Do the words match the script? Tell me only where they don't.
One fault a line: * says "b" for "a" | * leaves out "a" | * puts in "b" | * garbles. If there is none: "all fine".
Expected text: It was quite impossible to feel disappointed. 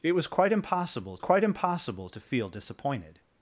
* puts in "quite impossible"